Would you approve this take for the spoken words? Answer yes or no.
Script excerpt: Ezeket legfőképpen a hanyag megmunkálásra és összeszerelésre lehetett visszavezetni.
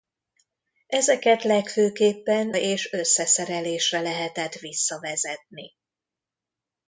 no